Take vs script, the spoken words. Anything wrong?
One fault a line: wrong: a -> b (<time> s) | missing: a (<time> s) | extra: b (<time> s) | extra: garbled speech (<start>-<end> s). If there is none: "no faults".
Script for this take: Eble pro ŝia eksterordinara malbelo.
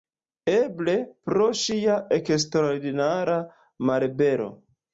no faults